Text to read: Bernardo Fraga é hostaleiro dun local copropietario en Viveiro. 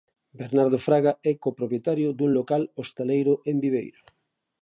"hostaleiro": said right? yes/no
no